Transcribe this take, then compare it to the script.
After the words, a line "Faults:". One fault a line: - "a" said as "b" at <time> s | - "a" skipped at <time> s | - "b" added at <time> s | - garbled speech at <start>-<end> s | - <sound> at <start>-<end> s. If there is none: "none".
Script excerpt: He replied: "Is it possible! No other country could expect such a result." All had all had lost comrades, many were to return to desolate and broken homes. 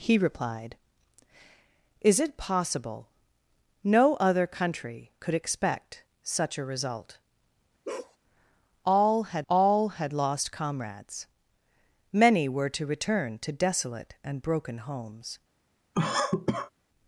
He replied: "Is it possible! No other country could expect such a result." All had all had lost comrades, many were to return to desolate and broken homes.
Faults:
- bark at 7.8-8.2 s
- cough at 15.9-16.7 s